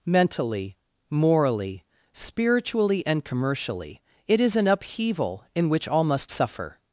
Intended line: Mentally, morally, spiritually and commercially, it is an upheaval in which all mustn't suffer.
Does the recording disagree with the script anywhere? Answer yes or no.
yes